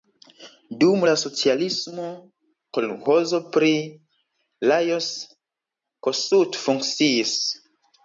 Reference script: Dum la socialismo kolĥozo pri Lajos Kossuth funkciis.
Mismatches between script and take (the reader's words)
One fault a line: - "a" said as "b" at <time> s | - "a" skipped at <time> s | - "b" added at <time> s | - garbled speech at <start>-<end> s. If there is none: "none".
none